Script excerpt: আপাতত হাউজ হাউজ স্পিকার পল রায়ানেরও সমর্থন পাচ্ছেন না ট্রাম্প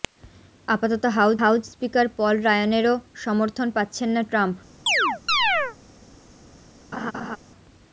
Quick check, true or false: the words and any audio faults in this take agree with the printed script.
false